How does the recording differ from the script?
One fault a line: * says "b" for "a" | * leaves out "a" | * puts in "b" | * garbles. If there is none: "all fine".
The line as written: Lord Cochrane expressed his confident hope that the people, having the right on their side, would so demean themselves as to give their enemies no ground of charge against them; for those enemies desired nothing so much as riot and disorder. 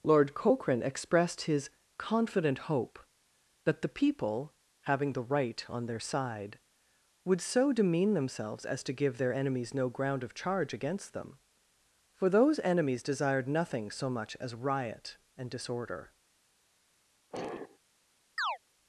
all fine